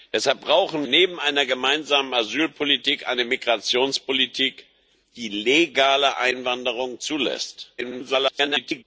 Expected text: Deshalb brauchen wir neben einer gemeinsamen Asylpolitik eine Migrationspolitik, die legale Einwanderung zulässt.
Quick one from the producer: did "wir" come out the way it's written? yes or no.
no